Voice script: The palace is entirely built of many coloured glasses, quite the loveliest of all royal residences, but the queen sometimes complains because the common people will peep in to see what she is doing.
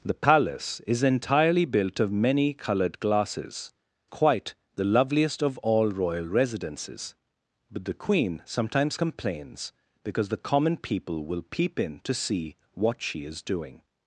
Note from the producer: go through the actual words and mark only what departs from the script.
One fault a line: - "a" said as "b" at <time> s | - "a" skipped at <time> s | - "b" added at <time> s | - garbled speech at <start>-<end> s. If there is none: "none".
none